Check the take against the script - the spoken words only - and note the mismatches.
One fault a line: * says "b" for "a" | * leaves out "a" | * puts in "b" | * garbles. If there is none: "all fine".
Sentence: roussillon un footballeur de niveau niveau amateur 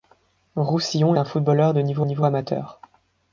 all fine